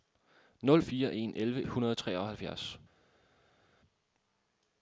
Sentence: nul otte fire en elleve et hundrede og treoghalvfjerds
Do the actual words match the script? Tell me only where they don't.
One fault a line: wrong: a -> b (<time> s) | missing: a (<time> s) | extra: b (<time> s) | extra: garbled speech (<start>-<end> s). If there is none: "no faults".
missing: otte (0.8 s)
missing: et (1.6 s)